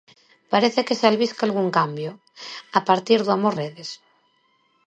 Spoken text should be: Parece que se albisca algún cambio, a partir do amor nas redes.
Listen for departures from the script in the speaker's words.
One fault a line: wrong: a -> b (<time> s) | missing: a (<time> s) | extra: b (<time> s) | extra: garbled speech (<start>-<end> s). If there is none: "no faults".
missing: nas (3.5 s)